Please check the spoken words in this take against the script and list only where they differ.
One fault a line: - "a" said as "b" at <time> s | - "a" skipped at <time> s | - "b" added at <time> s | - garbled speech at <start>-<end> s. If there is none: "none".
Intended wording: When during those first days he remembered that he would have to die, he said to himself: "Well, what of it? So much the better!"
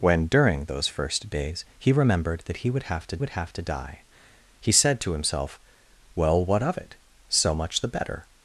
- "would have to" added at 3.2 s